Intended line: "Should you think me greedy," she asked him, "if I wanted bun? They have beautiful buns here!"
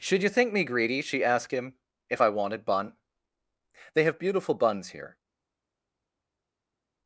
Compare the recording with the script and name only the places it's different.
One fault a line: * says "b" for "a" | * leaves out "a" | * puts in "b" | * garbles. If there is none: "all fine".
all fine